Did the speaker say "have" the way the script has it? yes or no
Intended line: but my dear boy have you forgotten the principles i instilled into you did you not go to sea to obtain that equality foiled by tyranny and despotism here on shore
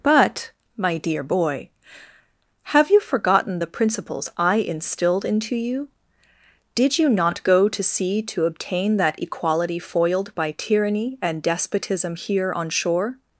yes